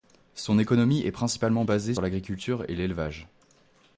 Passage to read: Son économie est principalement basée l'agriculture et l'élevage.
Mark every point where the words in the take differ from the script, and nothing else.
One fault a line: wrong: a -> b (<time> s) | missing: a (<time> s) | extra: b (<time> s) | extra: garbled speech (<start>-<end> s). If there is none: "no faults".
no faults